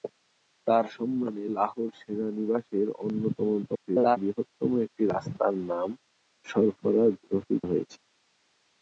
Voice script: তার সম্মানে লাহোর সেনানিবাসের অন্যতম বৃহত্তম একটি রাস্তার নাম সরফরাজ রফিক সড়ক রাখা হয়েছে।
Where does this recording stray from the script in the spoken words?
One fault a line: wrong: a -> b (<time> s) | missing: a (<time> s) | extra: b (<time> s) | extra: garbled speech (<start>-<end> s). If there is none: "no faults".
extra: garbled speech (3.6-4.2 s)
missing: সড়ক রাখা (7.6 s)